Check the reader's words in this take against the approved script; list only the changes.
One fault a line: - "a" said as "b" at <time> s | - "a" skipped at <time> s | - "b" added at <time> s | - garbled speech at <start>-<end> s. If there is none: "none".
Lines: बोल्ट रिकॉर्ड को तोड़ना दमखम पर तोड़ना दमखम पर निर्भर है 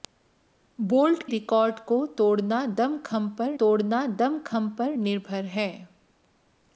none